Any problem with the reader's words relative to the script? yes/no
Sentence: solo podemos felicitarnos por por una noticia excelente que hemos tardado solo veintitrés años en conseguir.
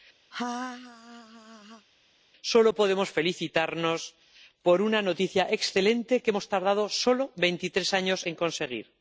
yes